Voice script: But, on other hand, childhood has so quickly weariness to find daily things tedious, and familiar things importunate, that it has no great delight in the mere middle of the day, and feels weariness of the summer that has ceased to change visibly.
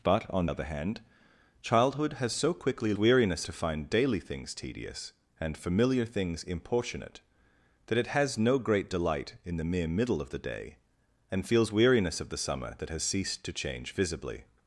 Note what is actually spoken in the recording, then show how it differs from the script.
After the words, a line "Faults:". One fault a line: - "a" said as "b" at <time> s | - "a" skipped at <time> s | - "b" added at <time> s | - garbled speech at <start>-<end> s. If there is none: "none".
But, on other hand, childhood has so quickly weariness to find daily things tedious, and familiar things importunate, that it has no great delight in the mere middle of the day, and feels weariness of the summer that has ceased to change visibly.
Faults:
none